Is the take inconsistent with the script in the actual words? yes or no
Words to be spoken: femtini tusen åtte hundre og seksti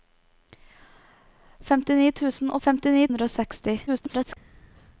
yes